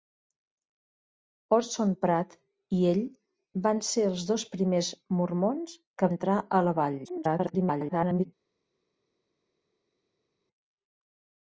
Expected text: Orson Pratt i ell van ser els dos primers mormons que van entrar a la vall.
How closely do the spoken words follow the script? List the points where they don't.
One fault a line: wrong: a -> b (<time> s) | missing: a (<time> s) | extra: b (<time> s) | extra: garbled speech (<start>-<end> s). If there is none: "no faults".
missing: van (6.1 s)
extra: garbled speech (7.0-8.3 s)